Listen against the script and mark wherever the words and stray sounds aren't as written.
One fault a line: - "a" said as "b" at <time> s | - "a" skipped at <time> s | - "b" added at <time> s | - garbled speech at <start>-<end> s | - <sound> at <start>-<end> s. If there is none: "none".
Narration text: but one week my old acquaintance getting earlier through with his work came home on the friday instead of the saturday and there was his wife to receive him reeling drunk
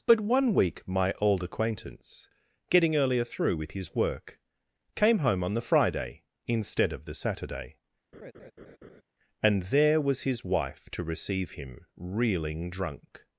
- laugh at 8.1-9.0 s